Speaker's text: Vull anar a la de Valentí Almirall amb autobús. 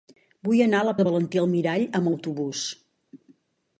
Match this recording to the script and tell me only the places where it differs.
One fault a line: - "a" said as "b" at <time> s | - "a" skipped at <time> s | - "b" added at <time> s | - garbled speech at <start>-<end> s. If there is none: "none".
none